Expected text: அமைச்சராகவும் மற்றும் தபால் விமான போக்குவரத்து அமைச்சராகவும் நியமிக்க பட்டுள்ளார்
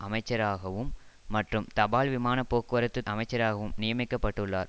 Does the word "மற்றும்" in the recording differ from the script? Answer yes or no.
no